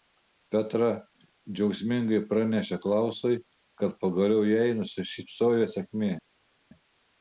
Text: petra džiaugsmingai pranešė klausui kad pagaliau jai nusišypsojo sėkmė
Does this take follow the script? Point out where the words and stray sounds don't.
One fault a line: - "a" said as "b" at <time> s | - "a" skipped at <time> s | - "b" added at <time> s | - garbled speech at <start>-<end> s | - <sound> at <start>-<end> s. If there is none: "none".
none